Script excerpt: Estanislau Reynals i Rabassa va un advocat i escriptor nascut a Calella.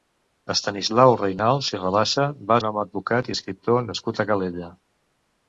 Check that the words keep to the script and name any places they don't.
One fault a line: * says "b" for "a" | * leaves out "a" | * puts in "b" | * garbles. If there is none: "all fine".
all fine